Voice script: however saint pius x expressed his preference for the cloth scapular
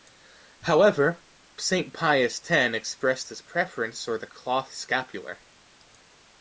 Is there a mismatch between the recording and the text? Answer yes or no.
no